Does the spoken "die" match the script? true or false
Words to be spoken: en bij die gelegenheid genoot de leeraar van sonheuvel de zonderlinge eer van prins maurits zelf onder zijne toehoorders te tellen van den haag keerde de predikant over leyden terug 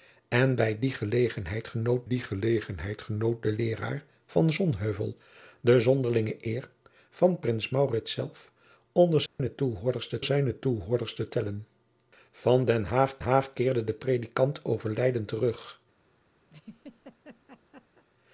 true